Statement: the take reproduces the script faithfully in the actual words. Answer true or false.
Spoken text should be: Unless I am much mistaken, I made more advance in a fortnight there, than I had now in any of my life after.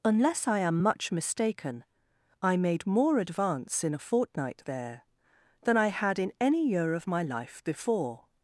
false